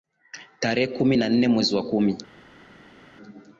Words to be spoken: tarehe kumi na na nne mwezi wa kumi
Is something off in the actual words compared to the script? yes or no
yes